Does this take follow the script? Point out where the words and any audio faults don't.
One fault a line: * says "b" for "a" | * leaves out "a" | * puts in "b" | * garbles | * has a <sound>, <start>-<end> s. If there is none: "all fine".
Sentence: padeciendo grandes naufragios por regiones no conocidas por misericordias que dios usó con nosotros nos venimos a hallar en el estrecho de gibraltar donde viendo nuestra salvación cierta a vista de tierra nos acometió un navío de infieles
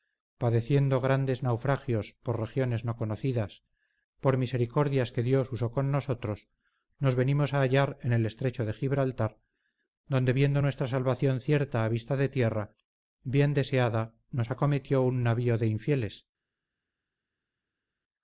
* puts in "bien deseada"